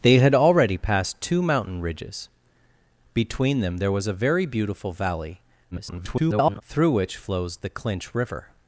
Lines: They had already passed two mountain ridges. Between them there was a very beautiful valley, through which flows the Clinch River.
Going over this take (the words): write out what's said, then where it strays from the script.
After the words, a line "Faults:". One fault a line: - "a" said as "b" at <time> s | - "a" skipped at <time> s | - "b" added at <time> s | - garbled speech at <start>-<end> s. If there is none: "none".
They had already passed two mountain ridges. Between them there was a very beautiful valley, [garbled] through which flows the Clinch River.
Faults:
- garbled speech at 5.7-6.6 s